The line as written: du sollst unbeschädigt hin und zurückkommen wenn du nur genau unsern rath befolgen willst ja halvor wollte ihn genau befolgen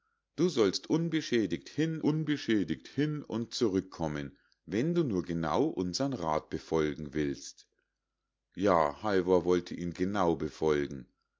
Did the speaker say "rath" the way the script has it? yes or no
yes